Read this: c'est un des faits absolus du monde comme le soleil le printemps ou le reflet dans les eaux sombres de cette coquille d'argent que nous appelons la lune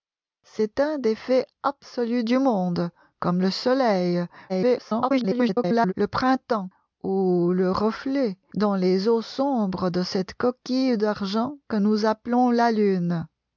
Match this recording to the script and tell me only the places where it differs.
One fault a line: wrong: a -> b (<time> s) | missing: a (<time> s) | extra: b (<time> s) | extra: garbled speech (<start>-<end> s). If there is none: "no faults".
extra: garbled speech (4.5-5.9 s)